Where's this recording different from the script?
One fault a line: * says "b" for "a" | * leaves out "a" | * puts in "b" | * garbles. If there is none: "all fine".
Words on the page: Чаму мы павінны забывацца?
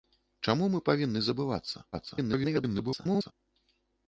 * garbles